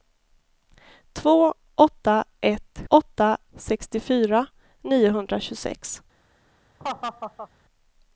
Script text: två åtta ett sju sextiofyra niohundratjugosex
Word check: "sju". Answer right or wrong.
wrong